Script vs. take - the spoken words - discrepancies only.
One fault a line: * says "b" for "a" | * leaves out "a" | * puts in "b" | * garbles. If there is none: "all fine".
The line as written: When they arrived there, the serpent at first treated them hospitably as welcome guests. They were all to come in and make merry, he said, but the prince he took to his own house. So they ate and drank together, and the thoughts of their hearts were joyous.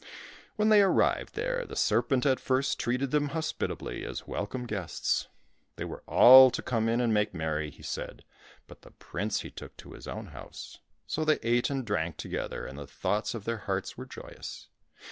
all fine